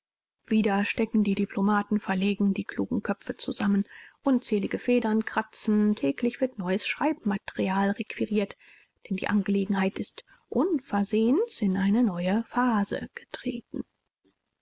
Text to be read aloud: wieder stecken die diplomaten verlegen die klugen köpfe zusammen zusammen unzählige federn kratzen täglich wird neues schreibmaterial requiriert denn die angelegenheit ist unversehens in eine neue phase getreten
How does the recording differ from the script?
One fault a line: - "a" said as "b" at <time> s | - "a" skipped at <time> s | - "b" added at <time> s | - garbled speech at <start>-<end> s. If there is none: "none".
- "zusammen" skipped at 3.8 s